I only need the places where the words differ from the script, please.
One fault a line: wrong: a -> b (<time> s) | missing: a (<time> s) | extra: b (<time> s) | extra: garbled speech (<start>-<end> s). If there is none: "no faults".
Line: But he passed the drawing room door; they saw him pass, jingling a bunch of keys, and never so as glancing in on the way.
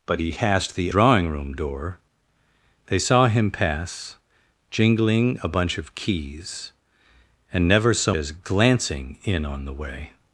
no faults